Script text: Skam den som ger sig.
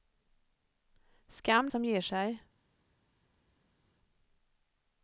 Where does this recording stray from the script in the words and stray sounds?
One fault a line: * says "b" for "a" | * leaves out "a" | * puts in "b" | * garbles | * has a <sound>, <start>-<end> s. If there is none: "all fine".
* leaves out "den"